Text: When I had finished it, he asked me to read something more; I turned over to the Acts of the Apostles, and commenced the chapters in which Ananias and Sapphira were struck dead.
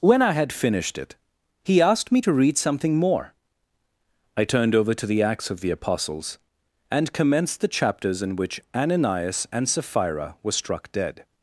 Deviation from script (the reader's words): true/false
false